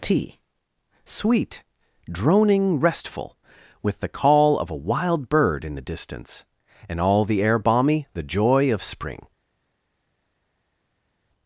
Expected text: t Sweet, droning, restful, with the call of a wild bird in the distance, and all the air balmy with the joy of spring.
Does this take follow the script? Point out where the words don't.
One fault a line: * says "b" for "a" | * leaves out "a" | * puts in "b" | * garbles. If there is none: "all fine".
* leaves out "with"